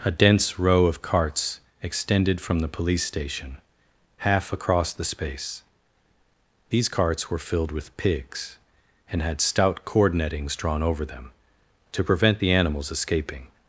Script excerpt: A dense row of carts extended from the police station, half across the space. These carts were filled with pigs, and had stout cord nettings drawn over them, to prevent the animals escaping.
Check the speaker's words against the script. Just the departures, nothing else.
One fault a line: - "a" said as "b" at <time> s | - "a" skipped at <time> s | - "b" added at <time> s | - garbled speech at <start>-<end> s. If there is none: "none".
none